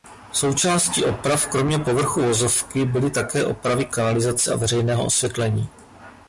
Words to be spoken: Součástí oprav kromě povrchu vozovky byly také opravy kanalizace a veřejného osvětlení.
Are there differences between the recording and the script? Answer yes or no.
no